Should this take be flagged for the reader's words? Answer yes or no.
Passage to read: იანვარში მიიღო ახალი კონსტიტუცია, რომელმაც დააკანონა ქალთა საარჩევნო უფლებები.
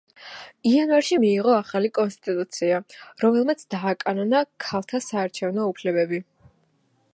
no